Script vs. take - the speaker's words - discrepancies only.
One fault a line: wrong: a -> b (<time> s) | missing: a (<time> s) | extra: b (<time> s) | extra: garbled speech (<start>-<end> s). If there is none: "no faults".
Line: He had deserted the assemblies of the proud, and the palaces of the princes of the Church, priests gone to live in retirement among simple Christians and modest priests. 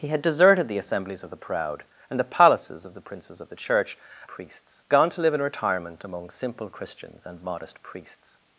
no faults